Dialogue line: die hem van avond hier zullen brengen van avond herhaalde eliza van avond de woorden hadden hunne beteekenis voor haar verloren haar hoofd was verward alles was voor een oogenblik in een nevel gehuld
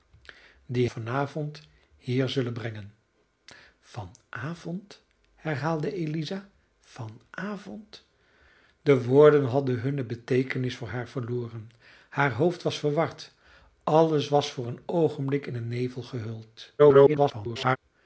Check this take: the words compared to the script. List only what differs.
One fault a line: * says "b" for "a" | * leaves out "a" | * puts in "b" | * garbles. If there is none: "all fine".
* leaves out "hem"
* garbles